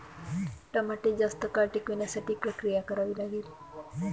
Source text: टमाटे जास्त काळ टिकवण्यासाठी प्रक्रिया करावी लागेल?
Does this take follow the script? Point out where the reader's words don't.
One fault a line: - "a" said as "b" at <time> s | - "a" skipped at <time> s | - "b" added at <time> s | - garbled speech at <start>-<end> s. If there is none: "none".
none